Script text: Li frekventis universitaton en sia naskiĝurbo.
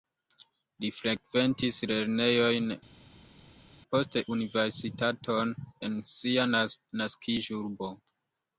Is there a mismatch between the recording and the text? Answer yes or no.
yes